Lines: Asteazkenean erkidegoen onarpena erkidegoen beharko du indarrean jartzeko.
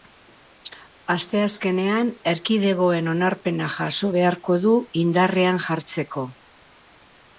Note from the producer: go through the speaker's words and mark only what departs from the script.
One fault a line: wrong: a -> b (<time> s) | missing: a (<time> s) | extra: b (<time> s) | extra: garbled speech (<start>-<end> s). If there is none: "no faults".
wrong: erkidegoen -> jaso (3.8 s)